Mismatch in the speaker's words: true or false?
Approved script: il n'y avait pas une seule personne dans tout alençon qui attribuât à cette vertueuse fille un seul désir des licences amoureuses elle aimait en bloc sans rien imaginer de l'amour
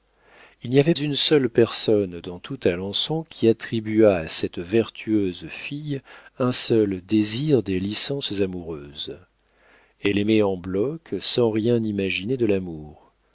true